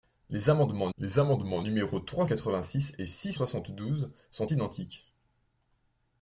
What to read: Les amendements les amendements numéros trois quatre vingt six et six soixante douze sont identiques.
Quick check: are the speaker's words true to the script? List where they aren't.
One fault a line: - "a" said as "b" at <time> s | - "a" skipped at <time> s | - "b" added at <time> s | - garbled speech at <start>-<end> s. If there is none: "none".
none